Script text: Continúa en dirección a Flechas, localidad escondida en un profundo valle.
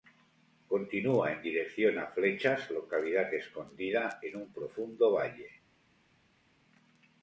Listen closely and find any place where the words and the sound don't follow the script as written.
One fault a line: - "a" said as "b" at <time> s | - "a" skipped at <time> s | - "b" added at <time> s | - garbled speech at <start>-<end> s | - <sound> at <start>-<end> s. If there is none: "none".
none